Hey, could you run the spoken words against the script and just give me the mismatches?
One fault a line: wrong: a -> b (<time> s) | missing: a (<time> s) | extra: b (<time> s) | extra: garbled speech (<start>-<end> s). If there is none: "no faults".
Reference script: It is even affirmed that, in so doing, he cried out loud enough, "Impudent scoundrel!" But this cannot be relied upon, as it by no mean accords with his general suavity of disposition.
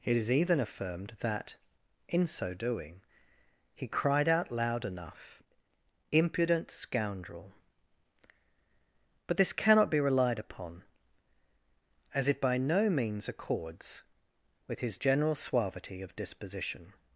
wrong: mean -> means (12.9 s)